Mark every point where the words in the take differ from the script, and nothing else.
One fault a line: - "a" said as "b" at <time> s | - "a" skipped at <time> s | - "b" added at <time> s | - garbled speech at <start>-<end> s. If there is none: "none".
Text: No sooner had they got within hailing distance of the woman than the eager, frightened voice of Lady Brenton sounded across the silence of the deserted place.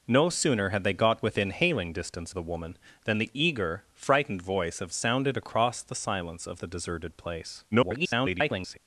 - "of" skipped at 2.3 s
- "Lady Brenton" skipped at 4.9 s
- garbled speech at 7.7-8.8 s